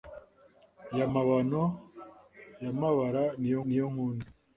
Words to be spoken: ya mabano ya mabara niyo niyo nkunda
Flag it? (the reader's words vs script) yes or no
no